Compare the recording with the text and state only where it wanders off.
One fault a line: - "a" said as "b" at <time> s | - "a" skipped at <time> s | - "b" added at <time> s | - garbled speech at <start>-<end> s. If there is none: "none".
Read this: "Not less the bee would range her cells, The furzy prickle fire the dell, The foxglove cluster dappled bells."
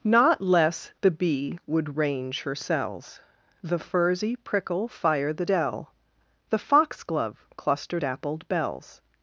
none